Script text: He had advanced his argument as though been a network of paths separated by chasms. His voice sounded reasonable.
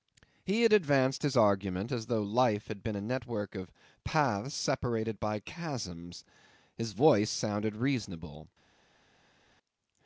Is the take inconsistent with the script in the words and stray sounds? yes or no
yes